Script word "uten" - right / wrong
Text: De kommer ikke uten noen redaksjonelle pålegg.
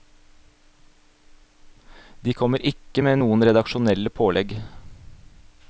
wrong